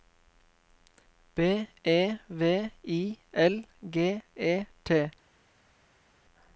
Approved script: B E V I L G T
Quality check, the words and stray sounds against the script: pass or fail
fail